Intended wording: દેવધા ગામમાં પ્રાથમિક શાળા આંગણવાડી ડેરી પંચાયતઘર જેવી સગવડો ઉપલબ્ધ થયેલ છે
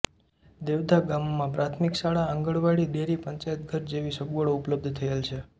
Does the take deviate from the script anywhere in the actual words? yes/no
no